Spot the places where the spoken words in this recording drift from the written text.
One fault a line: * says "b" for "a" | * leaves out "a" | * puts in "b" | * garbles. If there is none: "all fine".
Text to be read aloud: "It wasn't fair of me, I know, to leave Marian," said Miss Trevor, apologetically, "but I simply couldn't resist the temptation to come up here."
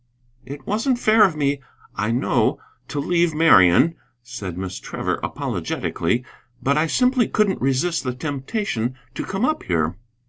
all fine